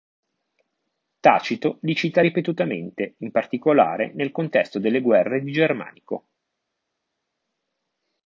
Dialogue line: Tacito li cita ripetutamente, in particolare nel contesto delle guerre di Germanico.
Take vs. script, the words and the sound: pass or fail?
pass